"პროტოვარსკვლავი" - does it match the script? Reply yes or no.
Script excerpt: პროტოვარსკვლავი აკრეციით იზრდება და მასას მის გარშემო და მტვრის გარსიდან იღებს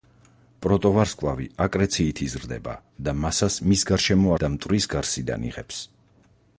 yes